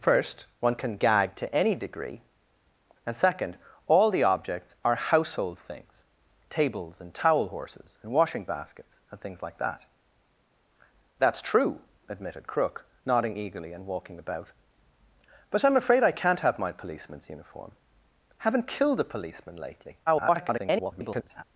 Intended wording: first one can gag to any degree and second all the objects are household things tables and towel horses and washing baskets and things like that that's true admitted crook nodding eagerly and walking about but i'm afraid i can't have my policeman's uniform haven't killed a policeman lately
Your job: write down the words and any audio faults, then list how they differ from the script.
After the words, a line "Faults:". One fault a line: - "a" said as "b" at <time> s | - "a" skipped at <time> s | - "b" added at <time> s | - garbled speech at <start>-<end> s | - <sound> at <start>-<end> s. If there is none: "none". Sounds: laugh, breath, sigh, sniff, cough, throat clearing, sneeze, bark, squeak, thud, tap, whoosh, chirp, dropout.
first one can gag to any degree and second all the objects are household things tables and towel horses and washing baskets and things like that that's true admitted crook nodding eagerly and walking about but i'm afraid i can't have my policeman's uniform haven't killed a policeman lately [garbled]
Faults:
- garbled speech at 20.1-21.4 s